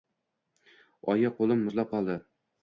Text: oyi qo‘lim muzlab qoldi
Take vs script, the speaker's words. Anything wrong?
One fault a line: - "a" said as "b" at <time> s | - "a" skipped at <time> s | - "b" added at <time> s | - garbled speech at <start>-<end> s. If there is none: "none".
none